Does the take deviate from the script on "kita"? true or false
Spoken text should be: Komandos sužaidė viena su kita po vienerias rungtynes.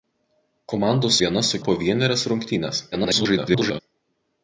true